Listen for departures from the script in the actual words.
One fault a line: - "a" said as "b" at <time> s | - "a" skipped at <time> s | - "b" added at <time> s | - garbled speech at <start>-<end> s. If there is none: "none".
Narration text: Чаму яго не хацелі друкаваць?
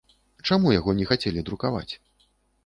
none